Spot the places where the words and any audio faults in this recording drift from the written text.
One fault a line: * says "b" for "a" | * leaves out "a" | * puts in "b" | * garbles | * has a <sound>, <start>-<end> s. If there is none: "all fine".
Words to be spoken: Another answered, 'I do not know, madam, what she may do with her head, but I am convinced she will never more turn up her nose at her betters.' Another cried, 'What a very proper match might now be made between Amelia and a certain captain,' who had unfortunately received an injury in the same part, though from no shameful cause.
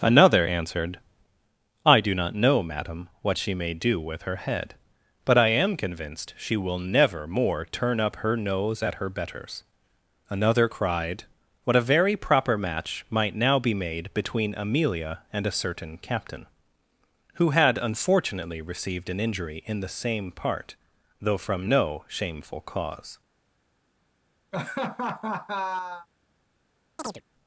* has a laugh, 24.5-26.1 s
* has a chirp, 27.0-27.2 s